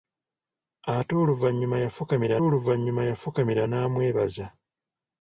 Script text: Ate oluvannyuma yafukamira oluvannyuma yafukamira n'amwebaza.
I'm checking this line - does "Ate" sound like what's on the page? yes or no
yes